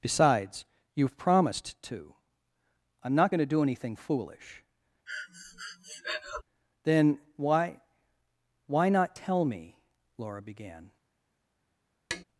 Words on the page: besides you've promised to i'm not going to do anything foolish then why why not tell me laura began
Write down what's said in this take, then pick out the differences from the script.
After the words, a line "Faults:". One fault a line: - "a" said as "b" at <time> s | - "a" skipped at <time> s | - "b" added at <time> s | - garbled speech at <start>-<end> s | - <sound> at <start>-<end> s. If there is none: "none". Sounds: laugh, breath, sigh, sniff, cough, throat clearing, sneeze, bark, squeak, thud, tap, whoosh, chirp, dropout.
besides you've promised to i'm not going to do anything foolish then why why not tell me laura began
Faults:
- breath at 5.1-6.4 s
- tap at 12.1-12.2 s